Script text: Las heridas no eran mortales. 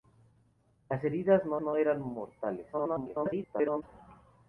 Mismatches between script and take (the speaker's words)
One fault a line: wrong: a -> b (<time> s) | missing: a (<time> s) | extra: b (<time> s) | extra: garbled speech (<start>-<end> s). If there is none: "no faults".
extra: no (1.6 s)
extra: garbled speech (2.7-3.8 s)